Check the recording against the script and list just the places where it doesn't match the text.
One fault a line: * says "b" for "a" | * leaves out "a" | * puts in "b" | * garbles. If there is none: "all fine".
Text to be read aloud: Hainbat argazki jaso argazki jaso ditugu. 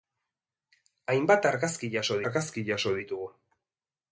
all fine